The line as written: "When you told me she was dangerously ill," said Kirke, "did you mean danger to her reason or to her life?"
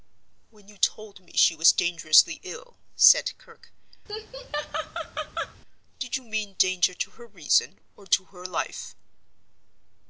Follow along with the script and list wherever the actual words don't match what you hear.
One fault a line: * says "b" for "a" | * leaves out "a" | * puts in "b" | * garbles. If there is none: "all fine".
all fine